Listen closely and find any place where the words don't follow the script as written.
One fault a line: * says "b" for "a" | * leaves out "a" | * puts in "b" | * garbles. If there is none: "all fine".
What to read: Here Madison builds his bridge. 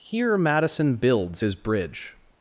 all fine